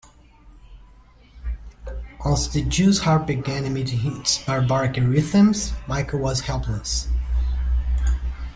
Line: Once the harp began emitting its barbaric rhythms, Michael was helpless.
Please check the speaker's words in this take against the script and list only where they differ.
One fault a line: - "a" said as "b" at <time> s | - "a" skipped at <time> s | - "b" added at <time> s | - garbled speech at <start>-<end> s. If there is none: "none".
- "jews" added at 2.6 s